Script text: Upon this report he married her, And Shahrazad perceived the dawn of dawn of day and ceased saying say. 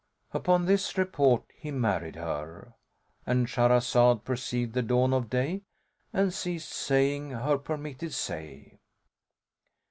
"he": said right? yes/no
yes